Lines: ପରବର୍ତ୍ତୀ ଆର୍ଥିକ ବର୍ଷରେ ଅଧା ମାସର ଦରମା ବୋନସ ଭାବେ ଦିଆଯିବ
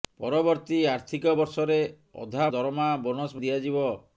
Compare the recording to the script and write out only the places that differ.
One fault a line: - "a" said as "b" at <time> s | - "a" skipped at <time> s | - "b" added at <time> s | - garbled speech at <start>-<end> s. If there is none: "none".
- "ମାସର" skipped at 2.5 s
- "ଭାବେ" skipped at 3.4 s